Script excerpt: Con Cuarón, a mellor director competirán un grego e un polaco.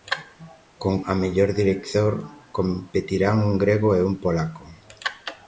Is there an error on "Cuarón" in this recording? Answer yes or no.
yes